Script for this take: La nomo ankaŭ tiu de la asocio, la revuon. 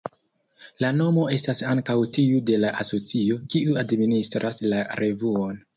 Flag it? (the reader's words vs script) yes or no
yes